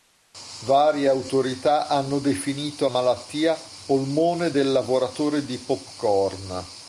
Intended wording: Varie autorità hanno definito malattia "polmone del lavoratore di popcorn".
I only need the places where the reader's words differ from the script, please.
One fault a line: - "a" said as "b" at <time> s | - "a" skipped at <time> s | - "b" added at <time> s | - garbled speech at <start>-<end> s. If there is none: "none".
none